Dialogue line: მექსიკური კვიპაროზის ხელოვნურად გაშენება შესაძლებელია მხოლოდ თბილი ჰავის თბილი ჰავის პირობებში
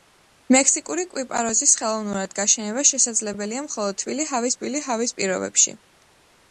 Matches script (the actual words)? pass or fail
pass